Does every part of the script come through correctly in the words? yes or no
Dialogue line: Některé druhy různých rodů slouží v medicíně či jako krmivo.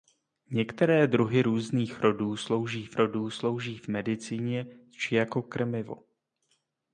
no